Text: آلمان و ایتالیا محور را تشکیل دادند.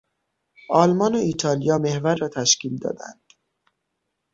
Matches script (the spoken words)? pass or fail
pass